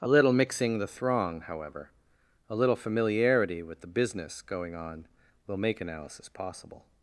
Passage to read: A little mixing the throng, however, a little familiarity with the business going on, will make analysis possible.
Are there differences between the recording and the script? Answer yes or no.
no